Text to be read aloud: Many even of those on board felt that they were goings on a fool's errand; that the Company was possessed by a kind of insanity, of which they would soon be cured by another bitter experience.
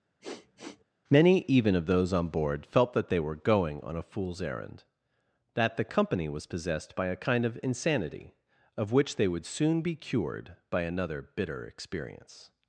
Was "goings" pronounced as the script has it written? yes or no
no